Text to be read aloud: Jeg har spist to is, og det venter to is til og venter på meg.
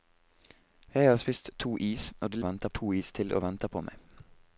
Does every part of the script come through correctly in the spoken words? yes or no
yes